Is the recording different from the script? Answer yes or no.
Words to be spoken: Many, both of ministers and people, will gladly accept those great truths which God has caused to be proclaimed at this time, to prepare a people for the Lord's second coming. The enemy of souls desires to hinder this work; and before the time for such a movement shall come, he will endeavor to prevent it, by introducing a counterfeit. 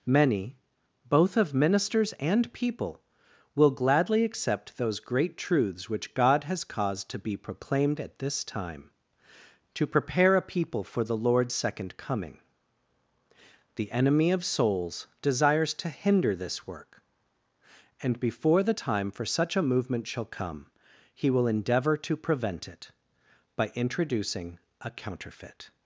no